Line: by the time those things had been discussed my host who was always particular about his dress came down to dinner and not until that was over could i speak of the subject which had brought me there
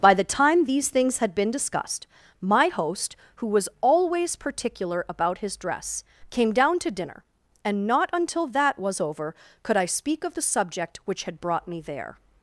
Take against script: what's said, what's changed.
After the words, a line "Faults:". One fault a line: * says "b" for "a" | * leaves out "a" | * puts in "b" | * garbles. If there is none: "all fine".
by the time these things had been discussed my host who was always particular about his dress came down to dinner and not until that was over could i speak of the subject which had brought me there
Faults:
* says "these" for "those"